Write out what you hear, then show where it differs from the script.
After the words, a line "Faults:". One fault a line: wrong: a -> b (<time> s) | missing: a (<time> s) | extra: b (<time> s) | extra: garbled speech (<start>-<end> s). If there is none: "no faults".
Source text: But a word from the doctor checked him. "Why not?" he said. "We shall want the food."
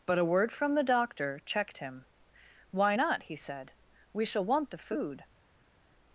But a word from the doctor checked him. "Why not?" he said. "We shall want the food."
Faults:
no faults